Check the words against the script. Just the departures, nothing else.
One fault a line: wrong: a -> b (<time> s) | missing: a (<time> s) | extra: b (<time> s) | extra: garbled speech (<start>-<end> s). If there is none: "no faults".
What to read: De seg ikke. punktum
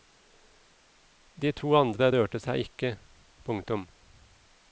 extra: to andre rørte (1.6 s)